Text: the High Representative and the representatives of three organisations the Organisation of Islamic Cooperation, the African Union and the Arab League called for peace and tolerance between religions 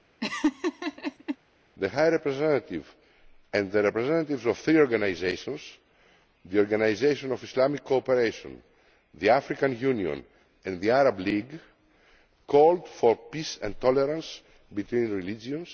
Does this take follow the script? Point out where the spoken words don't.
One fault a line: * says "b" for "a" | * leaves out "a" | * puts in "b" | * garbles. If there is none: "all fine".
all fine